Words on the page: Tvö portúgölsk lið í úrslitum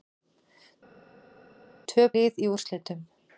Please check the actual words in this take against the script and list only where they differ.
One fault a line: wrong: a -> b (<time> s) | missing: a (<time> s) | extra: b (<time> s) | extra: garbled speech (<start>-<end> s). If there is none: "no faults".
missing: portúgölsk (2.0 s)